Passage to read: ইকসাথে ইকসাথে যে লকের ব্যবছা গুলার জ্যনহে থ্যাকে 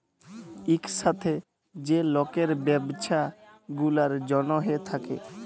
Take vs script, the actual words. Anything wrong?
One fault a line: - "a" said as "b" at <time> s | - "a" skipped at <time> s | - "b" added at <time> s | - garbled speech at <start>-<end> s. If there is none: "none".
- "ইকসাথে" skipped at 1.3 s